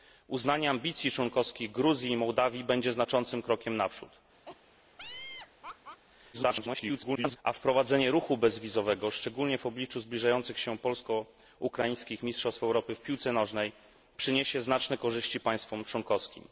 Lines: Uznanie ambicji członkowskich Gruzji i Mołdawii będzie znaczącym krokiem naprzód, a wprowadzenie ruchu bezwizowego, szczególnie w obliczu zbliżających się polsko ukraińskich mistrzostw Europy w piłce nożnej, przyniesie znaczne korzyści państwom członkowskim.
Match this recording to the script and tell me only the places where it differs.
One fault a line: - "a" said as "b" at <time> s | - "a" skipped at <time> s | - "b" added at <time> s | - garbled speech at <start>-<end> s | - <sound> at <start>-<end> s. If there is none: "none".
- laugh at 4.5-6.0 s
- garbled speech at 6.3-7.4 s